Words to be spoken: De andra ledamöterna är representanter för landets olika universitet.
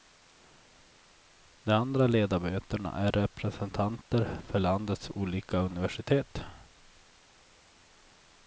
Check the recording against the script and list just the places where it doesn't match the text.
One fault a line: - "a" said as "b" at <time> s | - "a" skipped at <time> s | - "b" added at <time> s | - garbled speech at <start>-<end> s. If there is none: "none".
none